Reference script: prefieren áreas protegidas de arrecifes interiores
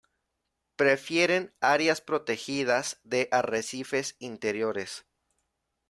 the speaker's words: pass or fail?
pass